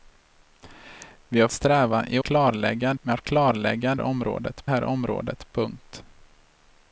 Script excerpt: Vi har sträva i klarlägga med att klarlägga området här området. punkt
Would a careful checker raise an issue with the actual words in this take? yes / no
no